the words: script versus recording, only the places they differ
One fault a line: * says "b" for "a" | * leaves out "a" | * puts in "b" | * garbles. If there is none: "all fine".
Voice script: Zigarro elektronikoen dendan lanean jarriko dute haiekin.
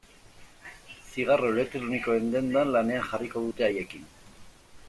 all fine